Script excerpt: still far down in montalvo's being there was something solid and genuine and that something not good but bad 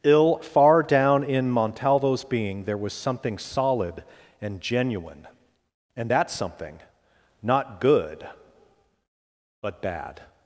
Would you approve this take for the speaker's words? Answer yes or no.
no